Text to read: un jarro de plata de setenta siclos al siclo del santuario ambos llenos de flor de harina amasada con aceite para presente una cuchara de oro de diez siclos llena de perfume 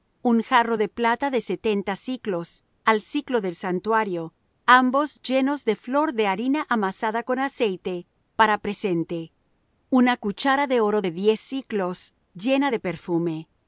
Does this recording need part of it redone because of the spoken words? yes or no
no